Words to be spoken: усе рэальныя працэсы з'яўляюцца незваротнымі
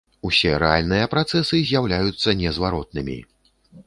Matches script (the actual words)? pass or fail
pass